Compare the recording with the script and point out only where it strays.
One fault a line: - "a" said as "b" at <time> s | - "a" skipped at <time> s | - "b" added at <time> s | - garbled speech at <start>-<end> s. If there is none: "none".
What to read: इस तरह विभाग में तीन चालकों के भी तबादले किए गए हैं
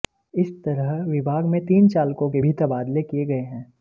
none